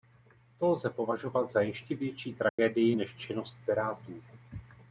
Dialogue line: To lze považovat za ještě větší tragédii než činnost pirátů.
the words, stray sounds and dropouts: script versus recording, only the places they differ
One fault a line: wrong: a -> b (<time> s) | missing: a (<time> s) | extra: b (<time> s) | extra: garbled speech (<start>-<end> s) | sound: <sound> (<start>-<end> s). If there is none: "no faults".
sound: dropout (2.5-2.6 s)